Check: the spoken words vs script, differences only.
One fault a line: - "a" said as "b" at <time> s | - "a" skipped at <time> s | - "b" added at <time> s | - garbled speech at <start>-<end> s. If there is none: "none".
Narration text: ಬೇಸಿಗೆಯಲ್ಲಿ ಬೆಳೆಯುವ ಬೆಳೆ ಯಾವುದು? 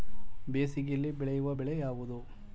none